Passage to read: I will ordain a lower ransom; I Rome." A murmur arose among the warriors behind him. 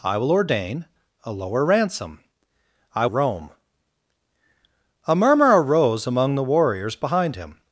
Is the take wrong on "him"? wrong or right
right